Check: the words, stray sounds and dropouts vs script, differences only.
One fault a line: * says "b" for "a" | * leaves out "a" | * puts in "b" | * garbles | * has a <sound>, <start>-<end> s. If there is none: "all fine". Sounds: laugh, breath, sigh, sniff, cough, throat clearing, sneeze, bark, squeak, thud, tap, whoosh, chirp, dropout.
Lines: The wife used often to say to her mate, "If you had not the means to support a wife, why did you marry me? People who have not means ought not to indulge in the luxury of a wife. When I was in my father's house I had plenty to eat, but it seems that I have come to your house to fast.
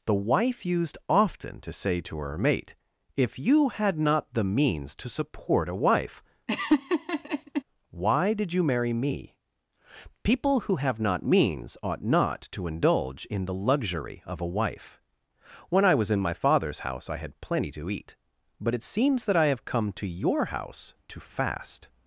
* has a laugh, 6.5-7.6 s